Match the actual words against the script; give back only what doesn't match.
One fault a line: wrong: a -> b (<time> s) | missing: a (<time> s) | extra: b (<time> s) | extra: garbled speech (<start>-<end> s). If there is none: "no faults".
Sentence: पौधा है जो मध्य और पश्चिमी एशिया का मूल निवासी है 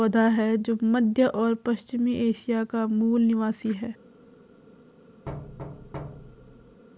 no faults